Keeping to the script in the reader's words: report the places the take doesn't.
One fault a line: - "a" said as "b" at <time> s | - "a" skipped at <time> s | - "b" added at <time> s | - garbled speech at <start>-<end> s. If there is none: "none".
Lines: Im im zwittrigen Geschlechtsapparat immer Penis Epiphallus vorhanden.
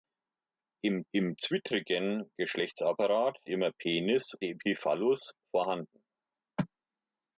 none